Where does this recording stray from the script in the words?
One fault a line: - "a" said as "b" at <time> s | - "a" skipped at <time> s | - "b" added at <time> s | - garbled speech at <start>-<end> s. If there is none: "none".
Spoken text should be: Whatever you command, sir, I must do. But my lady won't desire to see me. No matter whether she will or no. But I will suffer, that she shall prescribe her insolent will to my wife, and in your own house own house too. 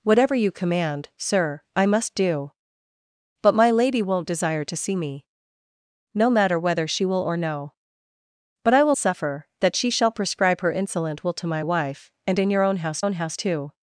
none